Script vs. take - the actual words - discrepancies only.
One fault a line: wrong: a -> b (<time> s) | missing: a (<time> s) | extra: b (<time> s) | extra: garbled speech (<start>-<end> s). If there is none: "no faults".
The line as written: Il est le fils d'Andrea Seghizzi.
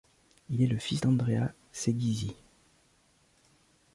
no faults